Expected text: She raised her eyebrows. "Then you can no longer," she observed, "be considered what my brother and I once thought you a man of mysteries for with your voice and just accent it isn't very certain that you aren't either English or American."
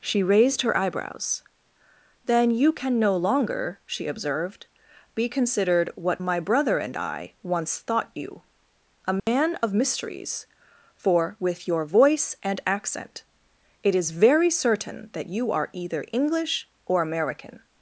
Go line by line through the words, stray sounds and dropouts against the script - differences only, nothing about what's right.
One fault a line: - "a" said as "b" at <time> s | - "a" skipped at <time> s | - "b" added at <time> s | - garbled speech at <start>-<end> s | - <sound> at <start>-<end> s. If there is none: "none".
- dropout at 9.2-9.3 s
- "just" skipped at 12.6 s
- "isn't" said as "is" at 14.0 s
- "aren't" said as "are" at 15.5 s